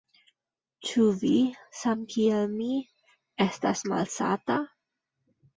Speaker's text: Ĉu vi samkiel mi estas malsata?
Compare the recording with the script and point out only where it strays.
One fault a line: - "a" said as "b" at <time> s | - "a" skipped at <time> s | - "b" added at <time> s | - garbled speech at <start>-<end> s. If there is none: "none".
none